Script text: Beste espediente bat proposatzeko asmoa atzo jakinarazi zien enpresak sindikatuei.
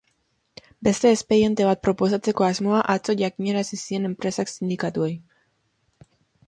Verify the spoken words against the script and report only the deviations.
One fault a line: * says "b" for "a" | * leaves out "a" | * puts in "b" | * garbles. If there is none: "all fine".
all fine